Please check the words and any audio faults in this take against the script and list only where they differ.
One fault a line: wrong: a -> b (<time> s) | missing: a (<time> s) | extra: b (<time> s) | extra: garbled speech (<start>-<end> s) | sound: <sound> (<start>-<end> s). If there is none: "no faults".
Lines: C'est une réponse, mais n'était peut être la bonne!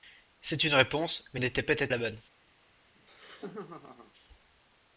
sound: laugh (3.0-4.1 s)